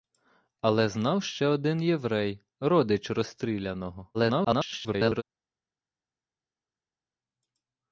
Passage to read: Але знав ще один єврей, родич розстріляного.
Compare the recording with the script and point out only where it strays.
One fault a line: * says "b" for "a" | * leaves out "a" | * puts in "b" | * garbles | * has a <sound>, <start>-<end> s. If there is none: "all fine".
* garbles